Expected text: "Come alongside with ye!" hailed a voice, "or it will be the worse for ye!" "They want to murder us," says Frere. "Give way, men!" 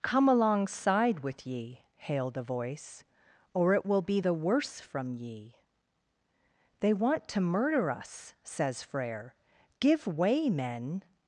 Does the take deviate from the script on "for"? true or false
true